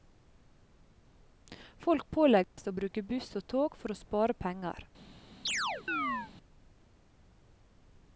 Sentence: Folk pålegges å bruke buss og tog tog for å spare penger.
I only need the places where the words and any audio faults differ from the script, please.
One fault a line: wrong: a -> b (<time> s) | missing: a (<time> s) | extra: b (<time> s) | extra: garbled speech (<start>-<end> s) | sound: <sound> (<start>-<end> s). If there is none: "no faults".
sound: dropout (2.4-2.6 s)
missing: tog (3.8 s)
sound: chirp (5.5-6.3 s)